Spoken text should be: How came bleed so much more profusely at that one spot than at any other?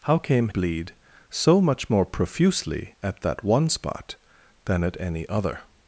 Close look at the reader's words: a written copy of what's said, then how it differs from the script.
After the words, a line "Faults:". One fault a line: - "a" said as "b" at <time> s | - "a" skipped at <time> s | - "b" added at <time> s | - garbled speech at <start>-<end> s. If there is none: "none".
How came bleed so much more profusely at that one spot than at any other?
Faults:
none